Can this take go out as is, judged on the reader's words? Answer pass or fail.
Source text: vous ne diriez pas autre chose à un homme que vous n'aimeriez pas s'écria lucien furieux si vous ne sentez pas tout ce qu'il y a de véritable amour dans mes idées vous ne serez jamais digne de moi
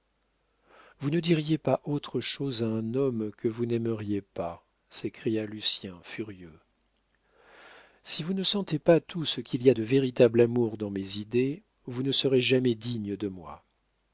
pass